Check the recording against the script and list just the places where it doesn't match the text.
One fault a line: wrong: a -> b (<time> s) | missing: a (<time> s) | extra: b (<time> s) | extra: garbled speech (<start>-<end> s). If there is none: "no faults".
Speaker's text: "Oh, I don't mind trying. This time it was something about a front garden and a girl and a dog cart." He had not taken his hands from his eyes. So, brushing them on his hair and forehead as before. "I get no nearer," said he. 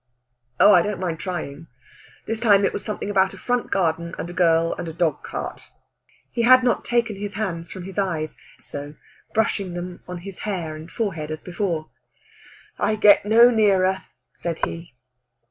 no faults